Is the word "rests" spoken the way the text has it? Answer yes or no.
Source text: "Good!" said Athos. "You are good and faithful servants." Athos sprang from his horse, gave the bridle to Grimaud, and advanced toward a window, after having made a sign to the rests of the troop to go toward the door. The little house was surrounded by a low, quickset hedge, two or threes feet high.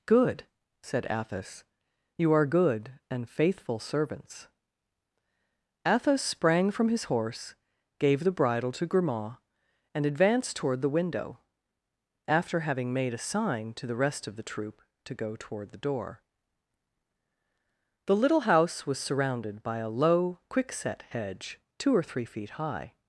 no